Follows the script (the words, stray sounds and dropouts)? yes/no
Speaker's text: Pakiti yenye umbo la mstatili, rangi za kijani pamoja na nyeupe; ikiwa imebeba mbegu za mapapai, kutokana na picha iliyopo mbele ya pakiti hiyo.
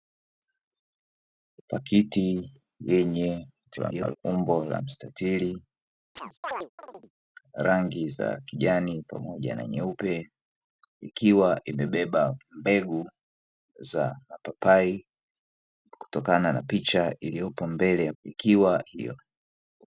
no